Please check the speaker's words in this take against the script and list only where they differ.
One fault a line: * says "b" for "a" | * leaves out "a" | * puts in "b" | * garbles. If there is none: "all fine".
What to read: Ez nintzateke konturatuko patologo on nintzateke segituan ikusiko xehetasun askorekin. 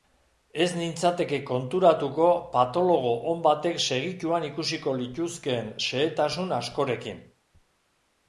* says "batek" for "nintzateke"
* puts in "lituzkeen"